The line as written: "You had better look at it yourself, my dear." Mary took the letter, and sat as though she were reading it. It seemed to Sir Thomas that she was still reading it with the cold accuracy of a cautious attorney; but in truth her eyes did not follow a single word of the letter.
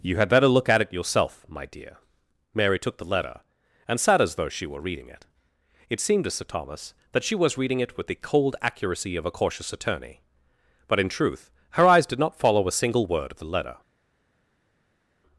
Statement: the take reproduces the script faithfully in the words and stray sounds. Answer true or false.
false